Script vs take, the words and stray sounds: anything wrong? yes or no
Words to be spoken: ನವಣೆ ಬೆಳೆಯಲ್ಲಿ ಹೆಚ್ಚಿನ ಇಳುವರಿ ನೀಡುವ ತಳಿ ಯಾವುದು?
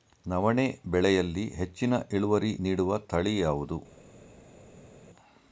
no